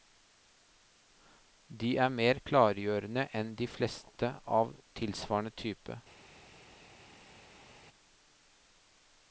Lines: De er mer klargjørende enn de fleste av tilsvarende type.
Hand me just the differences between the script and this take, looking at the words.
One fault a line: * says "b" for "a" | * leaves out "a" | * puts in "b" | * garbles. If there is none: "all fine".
all fine